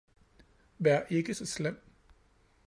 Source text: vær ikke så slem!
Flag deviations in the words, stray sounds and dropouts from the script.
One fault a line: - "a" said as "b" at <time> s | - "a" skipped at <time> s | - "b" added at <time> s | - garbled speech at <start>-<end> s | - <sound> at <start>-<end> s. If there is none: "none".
none